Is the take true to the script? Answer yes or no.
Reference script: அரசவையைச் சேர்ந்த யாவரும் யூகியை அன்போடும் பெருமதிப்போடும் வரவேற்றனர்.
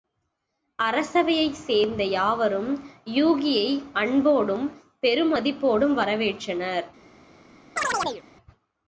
yes